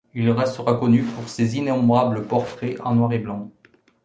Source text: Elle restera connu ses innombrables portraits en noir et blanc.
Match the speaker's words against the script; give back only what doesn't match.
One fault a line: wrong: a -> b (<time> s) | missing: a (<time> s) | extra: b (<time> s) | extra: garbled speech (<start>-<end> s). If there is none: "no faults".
wrong: Elle -> Il (0.1 s)
extra: pour (1.0 s)